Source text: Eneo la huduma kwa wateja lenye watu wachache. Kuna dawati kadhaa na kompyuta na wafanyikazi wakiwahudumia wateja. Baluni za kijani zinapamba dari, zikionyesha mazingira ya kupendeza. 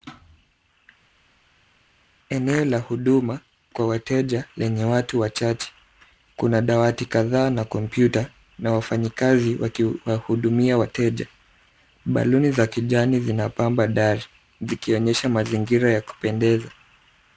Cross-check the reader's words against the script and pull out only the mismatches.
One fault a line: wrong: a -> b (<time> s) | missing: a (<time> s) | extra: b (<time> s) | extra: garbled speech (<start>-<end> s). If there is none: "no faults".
no faults